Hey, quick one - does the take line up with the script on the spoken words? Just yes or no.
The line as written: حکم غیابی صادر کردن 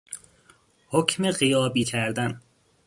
no